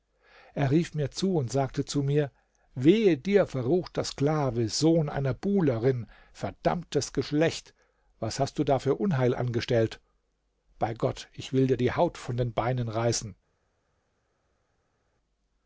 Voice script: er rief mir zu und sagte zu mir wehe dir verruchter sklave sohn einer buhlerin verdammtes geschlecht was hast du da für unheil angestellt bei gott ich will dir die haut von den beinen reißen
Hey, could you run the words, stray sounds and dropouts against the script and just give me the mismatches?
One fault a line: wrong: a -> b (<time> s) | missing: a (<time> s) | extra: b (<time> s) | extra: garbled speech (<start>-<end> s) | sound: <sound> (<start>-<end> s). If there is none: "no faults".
no faults